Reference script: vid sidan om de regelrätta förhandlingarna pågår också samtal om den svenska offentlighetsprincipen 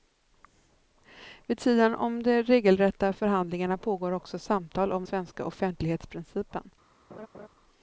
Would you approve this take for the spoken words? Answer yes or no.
no